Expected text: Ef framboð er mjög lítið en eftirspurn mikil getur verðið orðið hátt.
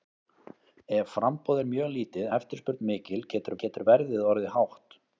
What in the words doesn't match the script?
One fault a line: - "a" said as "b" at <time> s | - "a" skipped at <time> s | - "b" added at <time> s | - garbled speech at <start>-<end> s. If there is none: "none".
- "en" skipped at 2.3 s
- "getur" added at 3.7 s